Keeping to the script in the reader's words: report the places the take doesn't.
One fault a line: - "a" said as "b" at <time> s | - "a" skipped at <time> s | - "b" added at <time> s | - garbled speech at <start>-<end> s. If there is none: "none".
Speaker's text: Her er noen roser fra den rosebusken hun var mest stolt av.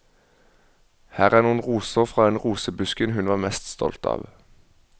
none